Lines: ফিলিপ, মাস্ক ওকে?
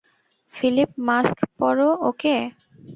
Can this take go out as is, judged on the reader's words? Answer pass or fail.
fail